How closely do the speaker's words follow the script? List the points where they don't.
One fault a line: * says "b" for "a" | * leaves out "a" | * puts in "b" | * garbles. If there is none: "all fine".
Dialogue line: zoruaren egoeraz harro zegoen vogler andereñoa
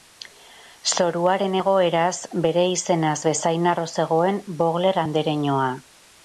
* puts in "bere izenaz bezain"